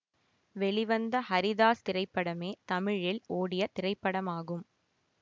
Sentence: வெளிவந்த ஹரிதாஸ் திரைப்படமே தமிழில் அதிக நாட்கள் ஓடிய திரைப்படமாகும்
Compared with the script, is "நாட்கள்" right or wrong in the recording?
wrong